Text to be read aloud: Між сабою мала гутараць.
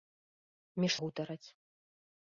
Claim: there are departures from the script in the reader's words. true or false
true